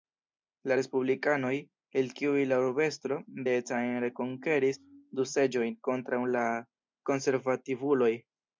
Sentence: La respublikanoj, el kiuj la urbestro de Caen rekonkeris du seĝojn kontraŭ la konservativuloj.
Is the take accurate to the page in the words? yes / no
yes